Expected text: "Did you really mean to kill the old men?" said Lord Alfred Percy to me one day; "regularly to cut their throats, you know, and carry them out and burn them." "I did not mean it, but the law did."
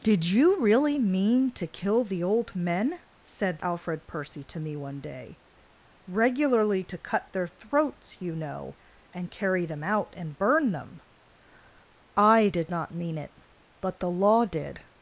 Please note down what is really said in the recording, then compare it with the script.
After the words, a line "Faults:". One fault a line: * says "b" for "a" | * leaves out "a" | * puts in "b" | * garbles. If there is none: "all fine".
"Did you really mean to kill the old men?" said Alfred Percy to me one day; "regularly to cut their throats, you know, and carry them out and burn them." "I did not mean it, but the law did."
Faults:
* leaves out "Lord"